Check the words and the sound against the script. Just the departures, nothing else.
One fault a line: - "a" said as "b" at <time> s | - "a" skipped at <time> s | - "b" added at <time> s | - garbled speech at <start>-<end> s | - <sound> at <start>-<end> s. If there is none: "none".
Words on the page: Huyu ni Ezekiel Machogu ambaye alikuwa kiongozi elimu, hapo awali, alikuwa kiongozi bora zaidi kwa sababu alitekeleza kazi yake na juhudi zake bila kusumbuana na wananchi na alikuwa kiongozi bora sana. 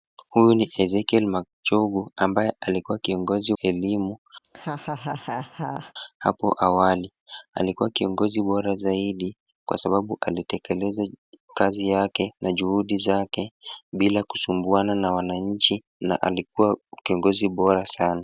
- laugh at 4.4-5.9 s